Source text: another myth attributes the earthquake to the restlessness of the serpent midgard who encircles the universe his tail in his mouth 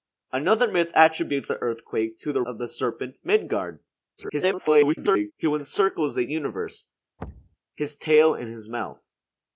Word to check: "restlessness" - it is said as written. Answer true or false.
false